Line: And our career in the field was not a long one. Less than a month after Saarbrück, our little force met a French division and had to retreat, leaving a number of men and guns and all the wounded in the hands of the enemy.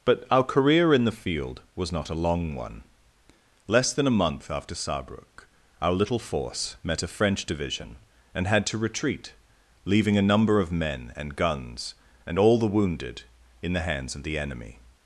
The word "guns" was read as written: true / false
true